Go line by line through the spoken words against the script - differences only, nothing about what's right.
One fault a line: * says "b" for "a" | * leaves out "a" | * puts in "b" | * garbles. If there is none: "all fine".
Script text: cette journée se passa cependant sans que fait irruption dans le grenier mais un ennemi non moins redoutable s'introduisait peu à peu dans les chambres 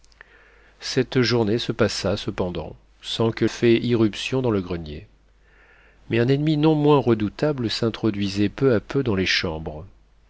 all fine